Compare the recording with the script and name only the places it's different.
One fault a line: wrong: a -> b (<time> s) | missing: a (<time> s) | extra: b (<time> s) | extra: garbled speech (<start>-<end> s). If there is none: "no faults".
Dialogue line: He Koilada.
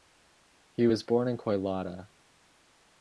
extra: was born in (0.8 s)